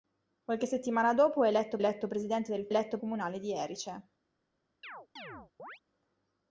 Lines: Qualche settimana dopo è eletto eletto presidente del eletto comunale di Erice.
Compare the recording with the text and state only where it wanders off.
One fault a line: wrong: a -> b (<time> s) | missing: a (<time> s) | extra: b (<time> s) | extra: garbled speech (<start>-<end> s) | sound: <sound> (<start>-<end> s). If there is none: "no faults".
sound: chirp (4.8-5.8 s)